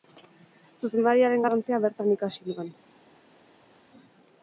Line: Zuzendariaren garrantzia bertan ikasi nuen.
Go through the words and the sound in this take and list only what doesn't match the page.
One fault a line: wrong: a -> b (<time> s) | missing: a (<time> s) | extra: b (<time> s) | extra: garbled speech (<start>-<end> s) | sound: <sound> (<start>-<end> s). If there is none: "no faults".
no faults